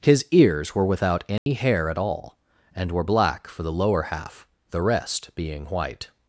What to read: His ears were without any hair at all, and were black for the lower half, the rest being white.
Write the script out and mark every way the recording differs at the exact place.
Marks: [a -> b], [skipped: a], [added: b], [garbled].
His ears were without any hair at all, and were black for the lower half, the rest being white.